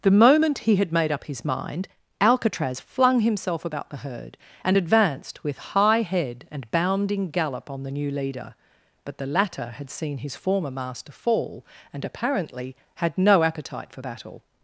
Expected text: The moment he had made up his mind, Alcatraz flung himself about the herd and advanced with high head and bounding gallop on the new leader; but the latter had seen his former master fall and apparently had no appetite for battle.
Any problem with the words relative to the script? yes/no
no